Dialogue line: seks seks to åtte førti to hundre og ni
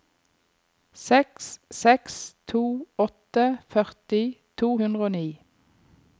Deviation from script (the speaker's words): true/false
false